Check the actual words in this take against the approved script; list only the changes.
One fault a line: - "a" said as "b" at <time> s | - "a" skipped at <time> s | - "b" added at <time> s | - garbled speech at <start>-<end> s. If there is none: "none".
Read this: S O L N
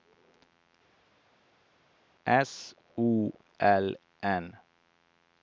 none